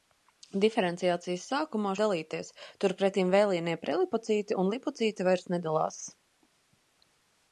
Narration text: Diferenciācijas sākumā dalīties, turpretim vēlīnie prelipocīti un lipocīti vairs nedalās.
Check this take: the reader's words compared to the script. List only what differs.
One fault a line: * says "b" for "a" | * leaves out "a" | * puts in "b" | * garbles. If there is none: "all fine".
all fine